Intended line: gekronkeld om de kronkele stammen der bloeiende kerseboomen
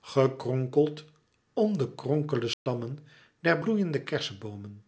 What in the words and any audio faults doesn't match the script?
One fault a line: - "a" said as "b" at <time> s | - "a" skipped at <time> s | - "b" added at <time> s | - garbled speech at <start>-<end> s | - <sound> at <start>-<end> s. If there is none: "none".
- dropout at 2.5-2.7 s